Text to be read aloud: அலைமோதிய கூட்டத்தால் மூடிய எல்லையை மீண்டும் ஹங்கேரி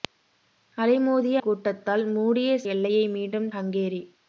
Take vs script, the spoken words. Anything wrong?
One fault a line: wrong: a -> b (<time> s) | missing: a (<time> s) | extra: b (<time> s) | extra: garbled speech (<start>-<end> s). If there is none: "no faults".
no faults